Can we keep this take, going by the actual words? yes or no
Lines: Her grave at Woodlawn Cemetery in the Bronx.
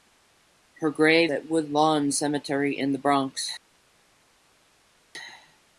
yes